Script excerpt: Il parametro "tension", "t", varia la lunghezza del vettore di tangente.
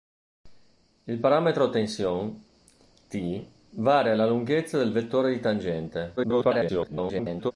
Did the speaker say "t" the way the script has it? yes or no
yes